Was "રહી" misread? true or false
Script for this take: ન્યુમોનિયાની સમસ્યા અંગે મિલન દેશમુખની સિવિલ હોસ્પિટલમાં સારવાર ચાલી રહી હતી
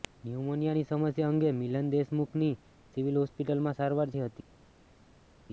true